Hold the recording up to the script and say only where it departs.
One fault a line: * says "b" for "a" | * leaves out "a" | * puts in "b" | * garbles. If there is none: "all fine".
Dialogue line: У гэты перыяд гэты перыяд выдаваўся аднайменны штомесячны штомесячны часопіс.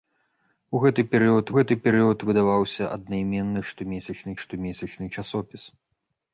all fine